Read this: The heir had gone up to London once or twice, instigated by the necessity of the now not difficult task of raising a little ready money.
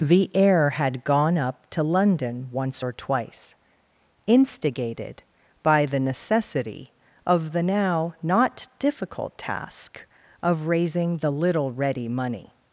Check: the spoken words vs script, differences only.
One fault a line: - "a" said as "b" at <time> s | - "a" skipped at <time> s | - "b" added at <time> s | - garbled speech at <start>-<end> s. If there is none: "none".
- "a" said as "the" at 11.2 s